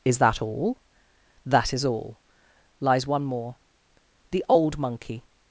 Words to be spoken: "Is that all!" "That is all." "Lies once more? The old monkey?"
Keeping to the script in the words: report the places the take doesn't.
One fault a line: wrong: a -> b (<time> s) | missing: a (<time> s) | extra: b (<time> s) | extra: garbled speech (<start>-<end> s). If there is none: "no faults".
wrong: once -> one (3.0 s)